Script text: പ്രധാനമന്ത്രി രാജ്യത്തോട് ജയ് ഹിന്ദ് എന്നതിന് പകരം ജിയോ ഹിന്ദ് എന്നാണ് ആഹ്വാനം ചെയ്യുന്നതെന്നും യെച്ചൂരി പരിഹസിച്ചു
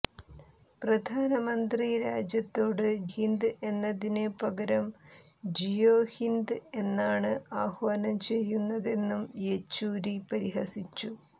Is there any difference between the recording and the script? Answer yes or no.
yes